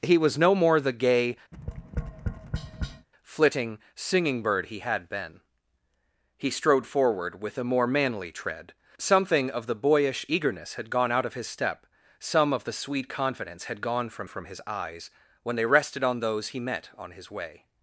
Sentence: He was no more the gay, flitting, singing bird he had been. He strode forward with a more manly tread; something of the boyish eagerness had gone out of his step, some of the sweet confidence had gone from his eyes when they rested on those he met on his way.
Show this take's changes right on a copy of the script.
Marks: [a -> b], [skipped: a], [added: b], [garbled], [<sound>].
He was no more the gay, [tap] flitting, singing bird he had been. He strode forward with a more manly tread; something of the boyish eagerness had gone out of his step, some of the sweet confidence had gone from [added: from] his eyes when they rested on those he met on his way.